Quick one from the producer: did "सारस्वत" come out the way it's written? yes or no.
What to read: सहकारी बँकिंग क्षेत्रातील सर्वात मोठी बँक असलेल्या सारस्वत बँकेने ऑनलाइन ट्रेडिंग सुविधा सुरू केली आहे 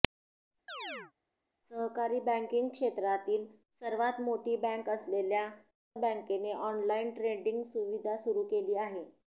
no